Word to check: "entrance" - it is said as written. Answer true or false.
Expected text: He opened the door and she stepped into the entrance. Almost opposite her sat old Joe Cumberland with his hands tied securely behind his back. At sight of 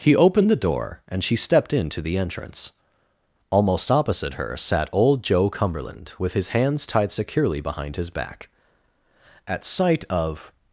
true